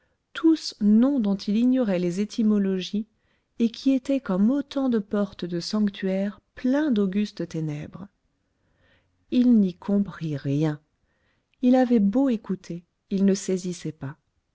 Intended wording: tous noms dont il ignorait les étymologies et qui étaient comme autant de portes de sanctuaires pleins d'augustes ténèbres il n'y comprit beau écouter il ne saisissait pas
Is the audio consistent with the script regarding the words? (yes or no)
no